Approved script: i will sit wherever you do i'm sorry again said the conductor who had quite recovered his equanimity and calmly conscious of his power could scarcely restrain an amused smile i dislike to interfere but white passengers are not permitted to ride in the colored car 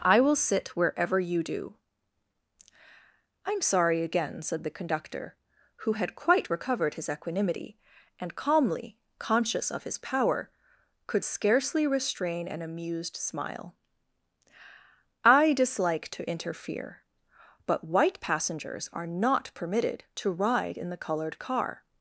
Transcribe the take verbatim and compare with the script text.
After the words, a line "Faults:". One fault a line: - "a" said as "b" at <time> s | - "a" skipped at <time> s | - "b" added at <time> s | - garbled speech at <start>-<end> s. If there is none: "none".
i will sit wherever you do i'm sorry again said the conductor who had quite recovered his equanimity and calmly conscious of his power could scarcely restrain an amused smile i dislike to interfere but white passengers are not permitted to ride in the colored car
Faults:
none